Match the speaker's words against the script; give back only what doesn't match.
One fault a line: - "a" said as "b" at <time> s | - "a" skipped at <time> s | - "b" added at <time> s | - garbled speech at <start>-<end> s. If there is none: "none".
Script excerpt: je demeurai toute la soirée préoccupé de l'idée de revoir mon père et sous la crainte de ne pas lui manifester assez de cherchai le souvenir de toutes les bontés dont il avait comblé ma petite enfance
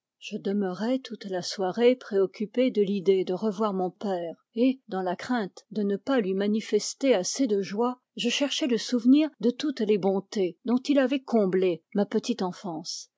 - "sous" said as "dans" at 4.9 s
- "joie je" added at 7.6 s